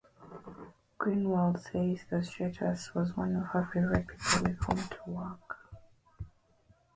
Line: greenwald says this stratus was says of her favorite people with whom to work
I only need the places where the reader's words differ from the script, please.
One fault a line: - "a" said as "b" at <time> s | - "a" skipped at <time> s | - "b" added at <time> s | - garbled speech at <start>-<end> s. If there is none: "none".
- "this" said as "that" at 2.1 s
- "says" said as "one" at 3.1 s